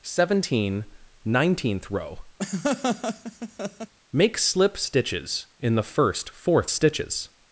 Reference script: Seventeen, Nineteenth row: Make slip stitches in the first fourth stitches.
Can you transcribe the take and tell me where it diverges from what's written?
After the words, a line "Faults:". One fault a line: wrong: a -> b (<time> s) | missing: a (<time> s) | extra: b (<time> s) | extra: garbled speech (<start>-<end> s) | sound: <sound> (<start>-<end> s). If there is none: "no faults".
Seventeen, Nineteenth row: Make slip stitches in the first fourth stitches.
Faults:
sound: laugh (2.4-3.9 s)